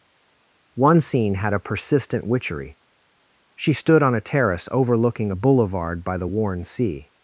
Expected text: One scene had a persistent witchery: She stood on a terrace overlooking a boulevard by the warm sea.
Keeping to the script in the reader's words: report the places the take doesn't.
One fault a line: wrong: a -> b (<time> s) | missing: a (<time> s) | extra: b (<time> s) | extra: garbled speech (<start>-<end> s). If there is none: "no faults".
wrong: warm -> worn (6.2 s)